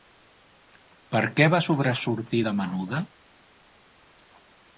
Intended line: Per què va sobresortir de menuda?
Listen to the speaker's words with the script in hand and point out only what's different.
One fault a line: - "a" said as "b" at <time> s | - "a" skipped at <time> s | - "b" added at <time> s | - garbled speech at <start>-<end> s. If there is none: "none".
none